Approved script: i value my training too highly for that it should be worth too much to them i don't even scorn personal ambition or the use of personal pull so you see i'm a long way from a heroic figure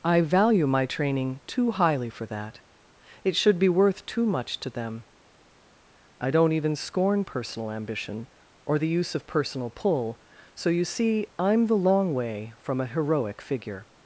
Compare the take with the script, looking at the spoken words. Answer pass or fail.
fail